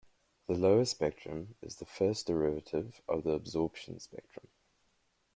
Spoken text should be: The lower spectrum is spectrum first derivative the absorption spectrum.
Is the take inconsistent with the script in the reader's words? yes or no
yes